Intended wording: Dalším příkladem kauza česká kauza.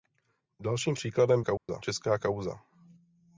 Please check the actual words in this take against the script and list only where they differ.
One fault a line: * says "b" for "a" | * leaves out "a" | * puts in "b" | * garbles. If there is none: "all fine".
all fine